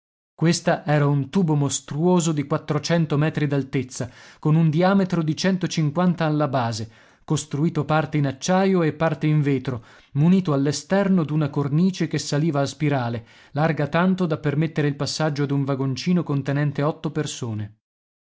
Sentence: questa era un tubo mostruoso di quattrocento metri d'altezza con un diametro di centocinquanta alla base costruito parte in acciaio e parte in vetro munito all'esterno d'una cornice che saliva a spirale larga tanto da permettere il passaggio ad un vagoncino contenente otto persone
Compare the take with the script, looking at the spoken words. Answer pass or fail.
pass